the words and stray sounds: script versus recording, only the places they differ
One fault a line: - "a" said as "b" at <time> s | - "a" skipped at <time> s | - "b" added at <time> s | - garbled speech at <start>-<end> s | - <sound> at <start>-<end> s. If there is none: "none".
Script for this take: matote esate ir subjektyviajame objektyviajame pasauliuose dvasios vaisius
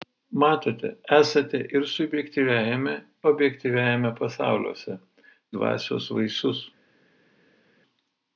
none